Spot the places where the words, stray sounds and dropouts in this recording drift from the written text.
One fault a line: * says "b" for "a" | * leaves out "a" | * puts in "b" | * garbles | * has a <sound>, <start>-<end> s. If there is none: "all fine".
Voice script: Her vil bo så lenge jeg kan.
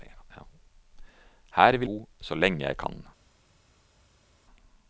all fine